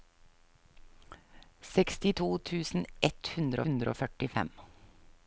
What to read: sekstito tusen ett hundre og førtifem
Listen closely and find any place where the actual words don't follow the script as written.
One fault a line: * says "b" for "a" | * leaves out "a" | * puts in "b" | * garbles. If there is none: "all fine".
* puts in "hundre"